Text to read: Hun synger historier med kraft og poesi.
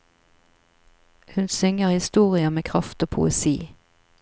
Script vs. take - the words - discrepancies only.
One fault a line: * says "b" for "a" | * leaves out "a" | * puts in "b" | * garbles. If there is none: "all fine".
all fine